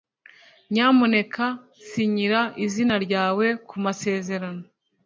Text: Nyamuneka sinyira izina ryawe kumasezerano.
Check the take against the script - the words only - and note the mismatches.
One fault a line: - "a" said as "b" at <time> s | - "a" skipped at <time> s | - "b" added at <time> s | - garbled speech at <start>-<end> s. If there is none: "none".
none